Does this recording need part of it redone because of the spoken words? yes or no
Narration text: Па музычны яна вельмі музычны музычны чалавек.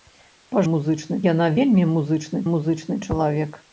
no